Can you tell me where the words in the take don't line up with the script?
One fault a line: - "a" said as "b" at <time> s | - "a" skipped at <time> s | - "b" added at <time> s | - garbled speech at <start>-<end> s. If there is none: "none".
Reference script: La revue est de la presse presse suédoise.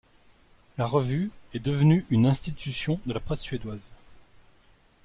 - "devenue une institution" added at 1.6 s
- "presse" skipped at 3.4 s